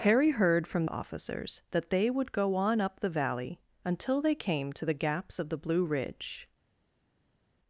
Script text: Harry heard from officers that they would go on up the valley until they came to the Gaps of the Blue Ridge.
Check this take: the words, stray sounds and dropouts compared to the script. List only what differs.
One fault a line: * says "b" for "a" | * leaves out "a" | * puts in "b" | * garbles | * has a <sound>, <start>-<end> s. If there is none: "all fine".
all fine